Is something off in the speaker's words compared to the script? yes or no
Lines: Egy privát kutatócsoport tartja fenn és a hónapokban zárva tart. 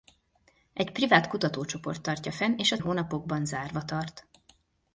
no